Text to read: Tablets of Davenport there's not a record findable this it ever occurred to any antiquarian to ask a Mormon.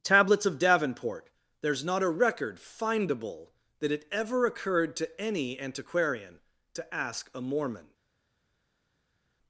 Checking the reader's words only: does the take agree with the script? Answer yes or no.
no